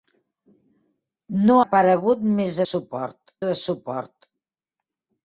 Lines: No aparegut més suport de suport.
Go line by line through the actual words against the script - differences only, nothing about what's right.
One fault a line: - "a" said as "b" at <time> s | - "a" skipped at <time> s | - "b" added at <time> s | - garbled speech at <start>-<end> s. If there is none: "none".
none